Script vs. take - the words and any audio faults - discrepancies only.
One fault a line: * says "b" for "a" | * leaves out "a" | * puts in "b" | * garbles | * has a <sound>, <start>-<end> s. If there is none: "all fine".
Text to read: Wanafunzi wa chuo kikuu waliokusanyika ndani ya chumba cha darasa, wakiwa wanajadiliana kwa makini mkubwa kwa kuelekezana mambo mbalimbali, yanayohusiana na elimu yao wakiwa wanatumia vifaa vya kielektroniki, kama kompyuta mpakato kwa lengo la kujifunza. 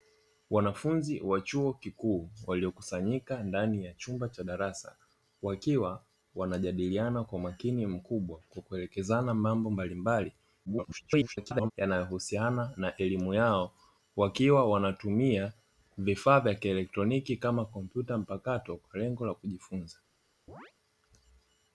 * garbles
* has a chirp, 20.5-20.7 s